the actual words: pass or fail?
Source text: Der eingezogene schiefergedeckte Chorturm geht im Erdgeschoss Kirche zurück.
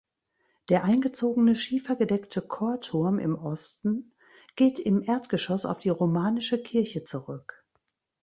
fail